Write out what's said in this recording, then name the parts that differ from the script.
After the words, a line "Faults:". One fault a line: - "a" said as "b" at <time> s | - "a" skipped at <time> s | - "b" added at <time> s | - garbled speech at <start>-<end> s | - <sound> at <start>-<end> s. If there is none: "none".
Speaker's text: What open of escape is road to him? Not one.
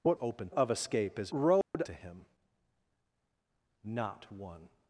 What open of escape is road to him? Not one.
Faults:
- dropout at 1.6-1.7 s